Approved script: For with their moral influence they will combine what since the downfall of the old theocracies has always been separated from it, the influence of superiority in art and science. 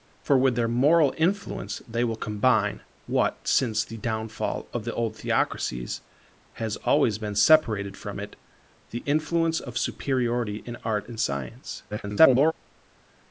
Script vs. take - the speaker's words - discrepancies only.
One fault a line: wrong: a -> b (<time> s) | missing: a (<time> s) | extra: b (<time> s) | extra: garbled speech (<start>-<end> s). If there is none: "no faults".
extra: garbled speech (11.9-12.5 s)